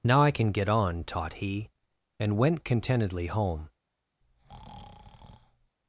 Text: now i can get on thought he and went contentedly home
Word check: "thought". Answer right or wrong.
wrong